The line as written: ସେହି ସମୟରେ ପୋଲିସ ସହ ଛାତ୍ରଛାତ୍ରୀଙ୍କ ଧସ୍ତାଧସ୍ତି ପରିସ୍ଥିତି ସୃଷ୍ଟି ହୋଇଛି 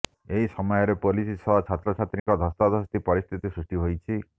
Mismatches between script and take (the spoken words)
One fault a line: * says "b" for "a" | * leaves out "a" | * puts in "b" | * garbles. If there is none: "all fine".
* says "ଏହି" for "ସେହି"